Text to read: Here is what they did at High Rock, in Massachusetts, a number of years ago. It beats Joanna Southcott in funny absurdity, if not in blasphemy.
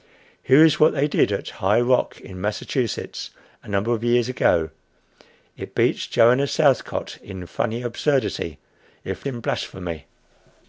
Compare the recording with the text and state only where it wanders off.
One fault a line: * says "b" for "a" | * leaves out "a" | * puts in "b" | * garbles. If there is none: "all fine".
* leaves out "not"